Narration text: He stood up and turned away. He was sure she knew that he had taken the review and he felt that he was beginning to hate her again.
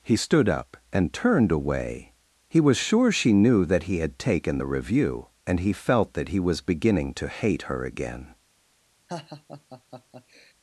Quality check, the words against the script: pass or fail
pass